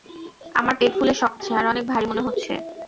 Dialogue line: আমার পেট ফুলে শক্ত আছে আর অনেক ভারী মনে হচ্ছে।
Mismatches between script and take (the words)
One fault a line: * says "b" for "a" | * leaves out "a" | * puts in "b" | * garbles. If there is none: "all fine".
all fine